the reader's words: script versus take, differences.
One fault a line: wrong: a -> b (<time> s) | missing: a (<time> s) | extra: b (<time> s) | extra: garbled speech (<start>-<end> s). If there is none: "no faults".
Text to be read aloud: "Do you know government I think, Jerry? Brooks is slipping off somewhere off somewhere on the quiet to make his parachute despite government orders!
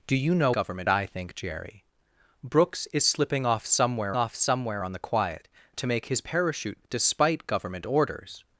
no faults